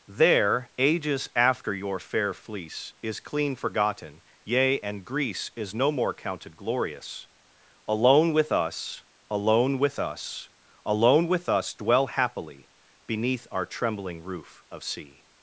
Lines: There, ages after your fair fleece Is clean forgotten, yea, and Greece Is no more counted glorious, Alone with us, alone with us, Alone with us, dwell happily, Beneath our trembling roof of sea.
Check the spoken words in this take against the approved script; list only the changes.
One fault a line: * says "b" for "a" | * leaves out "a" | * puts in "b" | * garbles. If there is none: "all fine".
all fine